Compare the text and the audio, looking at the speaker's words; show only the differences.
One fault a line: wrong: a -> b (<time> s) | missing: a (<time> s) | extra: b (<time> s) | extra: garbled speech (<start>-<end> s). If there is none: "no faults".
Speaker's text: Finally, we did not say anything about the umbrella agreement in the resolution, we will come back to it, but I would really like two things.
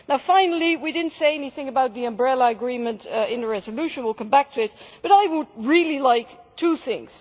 no faults